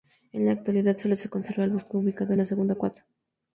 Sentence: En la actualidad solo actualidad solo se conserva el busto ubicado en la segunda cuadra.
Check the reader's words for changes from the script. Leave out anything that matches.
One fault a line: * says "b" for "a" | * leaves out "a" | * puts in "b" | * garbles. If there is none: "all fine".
* leaves out "actualidad solo"